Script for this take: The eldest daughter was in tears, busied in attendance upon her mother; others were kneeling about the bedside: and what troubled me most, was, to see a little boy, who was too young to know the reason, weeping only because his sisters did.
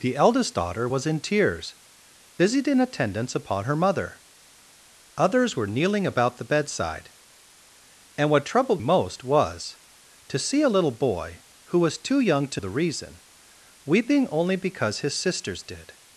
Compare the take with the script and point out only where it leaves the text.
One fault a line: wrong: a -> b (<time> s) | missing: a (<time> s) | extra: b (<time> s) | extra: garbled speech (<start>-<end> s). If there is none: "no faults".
missing: me (8.8 s)
missing: know (12.6 s)